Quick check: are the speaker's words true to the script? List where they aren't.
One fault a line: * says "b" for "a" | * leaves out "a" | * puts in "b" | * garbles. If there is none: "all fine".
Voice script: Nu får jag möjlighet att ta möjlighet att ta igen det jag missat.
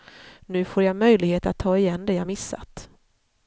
* leaves out "möjlighet att ta"